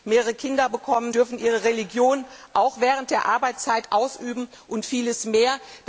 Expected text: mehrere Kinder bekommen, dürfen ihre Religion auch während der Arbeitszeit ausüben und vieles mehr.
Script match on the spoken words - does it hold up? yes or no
yes